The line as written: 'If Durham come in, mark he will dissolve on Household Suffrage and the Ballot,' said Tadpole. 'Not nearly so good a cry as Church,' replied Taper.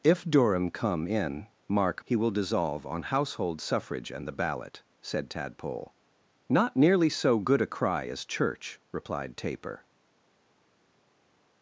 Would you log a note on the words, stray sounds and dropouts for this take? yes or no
no